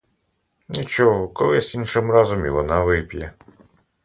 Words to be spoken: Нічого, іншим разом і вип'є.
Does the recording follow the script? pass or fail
fail